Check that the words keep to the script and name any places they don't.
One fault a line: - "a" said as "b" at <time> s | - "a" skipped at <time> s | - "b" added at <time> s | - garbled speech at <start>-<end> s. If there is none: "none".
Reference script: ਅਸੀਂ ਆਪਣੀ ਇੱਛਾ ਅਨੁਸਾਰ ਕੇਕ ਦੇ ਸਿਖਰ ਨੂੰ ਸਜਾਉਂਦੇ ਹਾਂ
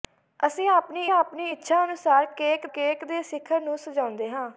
- "ਆਪਣੀ" added at 1.1 s
- "ਕੇਕ" added at 2.7 s